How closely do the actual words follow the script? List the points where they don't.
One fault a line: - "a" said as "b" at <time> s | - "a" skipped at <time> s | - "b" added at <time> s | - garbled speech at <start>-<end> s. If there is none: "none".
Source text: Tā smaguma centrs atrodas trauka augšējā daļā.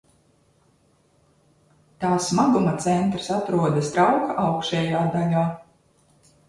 none